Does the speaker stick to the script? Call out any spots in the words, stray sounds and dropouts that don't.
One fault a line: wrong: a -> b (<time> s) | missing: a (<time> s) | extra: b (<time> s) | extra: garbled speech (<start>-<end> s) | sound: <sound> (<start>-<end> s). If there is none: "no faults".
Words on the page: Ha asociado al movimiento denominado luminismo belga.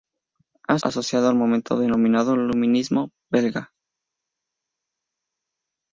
no faults